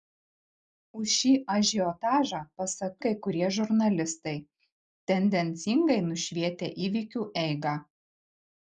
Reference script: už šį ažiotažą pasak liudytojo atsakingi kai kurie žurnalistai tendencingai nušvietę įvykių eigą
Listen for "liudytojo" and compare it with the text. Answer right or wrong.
wrong